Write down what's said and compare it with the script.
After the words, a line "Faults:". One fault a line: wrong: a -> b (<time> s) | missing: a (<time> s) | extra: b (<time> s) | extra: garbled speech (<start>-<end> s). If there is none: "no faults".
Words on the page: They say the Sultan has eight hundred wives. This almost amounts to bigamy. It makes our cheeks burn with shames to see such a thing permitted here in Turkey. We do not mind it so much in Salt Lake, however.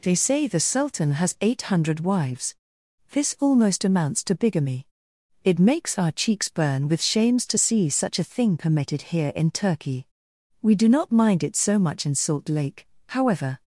They say the Sultan has eight hundred wives. This almost amounts to bigamy. It makes our cheeks burn with shames to see such a thing permitted here in Turkey. We do not mind it so much in Salt Lake, however.
Faults:
no faults